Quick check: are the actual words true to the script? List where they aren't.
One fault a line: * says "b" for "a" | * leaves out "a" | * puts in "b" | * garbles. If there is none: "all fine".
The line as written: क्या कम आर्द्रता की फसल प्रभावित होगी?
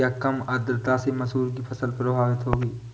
* puts in "से मसूर"